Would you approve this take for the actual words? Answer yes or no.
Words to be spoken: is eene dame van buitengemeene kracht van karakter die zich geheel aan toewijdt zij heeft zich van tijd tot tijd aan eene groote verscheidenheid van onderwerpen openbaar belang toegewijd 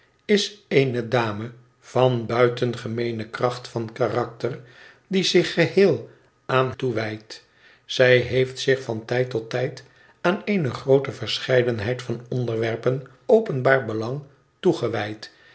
yes